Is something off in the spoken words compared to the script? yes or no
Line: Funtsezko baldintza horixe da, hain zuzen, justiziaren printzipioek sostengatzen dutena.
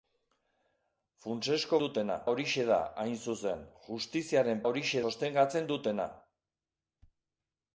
yes